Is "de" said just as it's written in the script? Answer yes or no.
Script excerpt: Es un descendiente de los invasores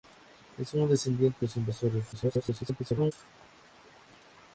no